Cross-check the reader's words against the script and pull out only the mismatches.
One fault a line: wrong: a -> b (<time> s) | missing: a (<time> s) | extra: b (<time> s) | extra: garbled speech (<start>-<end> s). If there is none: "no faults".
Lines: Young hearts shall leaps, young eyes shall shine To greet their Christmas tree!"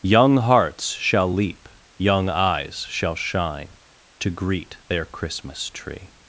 wrong: leaps -> leap (1.3 s)